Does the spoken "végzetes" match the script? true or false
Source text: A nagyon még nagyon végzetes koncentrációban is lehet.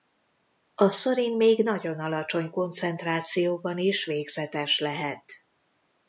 false